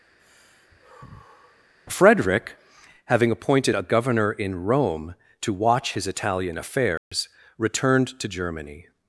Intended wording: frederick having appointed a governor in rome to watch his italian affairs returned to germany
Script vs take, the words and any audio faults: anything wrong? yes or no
yes